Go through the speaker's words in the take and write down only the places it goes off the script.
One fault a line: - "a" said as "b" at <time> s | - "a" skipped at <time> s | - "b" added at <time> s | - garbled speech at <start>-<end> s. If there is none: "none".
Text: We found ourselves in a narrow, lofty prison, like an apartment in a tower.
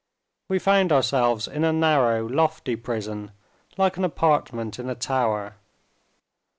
none